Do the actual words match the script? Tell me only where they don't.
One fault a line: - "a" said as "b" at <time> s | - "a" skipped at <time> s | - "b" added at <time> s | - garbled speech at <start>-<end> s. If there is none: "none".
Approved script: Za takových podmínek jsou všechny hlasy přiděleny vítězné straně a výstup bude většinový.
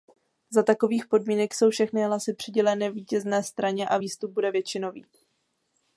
none